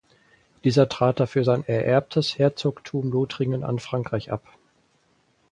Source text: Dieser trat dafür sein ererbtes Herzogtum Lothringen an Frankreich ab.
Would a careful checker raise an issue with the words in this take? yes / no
no